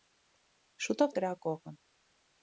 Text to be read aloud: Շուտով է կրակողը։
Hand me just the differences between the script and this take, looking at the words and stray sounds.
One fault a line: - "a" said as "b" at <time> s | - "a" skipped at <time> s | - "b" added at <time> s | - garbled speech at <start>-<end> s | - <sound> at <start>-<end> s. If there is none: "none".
none